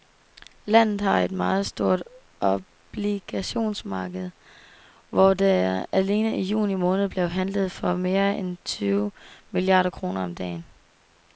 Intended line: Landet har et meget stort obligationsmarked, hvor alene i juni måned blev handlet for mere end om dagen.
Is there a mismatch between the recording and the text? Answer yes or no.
yes